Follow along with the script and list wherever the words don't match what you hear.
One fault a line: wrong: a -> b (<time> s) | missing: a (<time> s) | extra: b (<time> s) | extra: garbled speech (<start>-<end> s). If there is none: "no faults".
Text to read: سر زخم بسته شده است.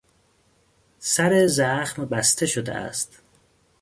no faults